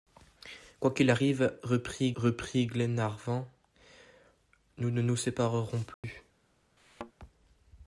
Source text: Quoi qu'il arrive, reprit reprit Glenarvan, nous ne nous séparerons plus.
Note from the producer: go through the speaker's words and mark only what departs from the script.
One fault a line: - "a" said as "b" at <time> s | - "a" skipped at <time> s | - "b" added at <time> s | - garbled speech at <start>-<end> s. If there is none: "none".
none